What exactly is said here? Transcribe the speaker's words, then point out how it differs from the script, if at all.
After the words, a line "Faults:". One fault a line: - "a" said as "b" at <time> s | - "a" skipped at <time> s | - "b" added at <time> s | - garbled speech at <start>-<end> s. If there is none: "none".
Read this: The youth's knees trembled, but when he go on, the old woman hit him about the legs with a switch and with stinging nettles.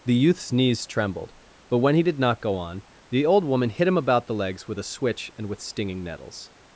The youth's knees trembled, but when he did not go on, the old woman hit him about the legs with a switch and with stinging nettles.
Faults:
- "did not" added at 2.0 s